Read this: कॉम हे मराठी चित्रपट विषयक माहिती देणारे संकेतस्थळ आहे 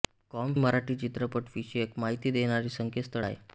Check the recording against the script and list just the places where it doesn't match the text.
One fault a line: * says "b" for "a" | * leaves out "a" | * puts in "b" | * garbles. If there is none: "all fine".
* leaves out "हे"